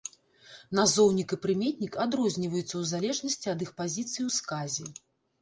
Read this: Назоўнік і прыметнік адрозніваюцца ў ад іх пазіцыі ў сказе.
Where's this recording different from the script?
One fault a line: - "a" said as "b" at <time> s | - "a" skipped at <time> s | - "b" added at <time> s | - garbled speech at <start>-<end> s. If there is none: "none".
- "залежнасці" added at 2.9 s